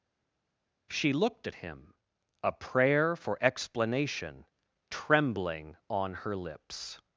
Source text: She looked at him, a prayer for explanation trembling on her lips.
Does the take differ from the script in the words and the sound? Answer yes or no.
no